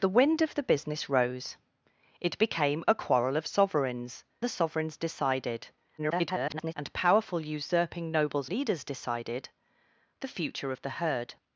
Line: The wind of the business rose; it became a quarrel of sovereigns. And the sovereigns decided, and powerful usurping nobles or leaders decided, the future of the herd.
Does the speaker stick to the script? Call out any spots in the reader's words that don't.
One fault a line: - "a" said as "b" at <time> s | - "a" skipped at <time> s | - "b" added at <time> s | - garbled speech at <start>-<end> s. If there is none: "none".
- "And" skipped at 4.2 s
- garbled speech at 6.0-6.7 s
- "or" skipped at 8.5 s